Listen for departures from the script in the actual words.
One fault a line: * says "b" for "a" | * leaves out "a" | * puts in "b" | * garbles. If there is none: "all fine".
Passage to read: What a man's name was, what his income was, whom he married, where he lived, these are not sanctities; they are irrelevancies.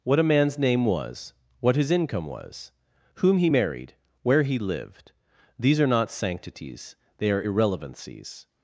all fine